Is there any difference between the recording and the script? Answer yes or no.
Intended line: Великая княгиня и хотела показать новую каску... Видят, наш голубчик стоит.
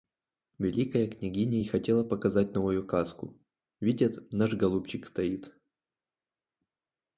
no